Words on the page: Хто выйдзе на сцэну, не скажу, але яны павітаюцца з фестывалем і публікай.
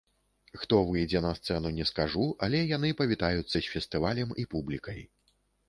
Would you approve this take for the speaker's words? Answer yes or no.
yes